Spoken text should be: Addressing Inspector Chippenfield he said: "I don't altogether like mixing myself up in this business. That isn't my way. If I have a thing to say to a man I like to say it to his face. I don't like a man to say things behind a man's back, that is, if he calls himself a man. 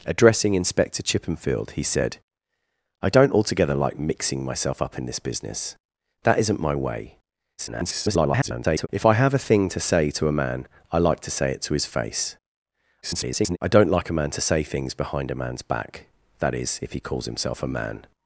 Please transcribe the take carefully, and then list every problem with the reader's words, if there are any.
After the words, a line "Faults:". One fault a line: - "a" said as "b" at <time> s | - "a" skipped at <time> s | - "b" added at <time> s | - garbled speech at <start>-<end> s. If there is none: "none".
Addressing Inspector Chippenfield he said: "I don't altogether like mixing myself up in this business. That isn't my way. [garbled] If I have a thing to say to a man I like to say it to his face. [garbled] I don't like a man to say things behind a man's back, that is, if he calls himself a man.
Faults:
- garbled speech at 7.6-8.9 s
- garbled speech at 13.0-13.6 s